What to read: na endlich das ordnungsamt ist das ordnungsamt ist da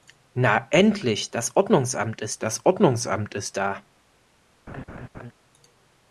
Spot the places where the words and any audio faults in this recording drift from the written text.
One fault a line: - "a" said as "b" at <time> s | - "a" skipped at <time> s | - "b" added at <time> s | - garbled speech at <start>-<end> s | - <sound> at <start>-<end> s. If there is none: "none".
- laugh at 4.7-5.3 s